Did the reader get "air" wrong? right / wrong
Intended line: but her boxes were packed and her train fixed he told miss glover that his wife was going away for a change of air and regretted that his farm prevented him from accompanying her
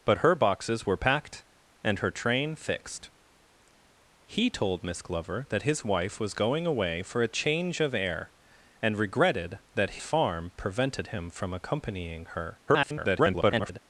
right